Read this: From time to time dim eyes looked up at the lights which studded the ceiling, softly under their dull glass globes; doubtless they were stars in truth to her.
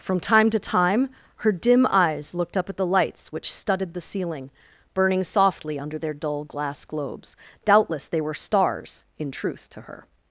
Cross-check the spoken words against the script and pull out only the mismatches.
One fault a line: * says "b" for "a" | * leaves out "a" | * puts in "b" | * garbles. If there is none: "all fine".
* puts in "her"
* puts in "burning"